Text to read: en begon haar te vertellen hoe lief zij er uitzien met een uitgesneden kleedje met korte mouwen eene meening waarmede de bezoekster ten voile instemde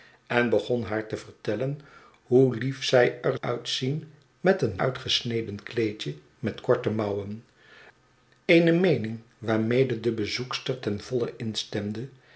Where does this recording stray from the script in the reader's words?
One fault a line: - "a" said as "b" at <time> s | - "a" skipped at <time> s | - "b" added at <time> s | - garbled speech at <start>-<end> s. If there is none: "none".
none